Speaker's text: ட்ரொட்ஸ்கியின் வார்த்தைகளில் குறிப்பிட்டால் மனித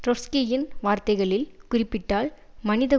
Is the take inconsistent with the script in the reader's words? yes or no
no